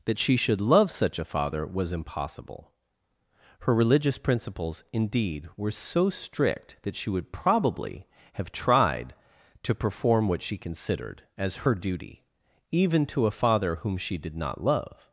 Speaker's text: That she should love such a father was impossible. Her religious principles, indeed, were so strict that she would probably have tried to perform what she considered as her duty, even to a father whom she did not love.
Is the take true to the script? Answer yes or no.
yes